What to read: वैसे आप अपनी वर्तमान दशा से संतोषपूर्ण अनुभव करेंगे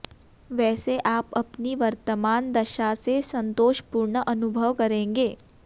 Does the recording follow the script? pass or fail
pass